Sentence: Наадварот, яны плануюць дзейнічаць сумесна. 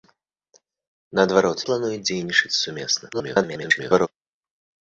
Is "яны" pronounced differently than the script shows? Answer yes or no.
yes